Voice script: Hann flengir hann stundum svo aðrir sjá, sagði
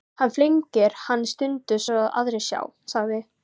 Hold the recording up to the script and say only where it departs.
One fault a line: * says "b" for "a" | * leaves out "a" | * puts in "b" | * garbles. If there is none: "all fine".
all fine